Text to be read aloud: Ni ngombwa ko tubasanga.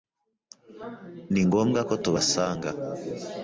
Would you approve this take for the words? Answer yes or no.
yes